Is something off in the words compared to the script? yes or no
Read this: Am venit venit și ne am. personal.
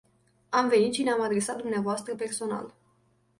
yes